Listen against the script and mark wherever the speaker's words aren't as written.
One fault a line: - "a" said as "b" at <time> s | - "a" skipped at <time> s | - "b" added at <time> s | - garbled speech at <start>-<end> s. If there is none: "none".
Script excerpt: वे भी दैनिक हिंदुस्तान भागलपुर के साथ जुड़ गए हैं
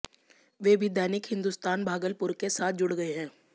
none